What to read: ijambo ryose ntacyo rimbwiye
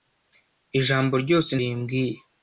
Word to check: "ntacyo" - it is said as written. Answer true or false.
false